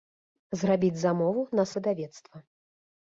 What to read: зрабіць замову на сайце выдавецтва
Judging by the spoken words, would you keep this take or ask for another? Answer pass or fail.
fail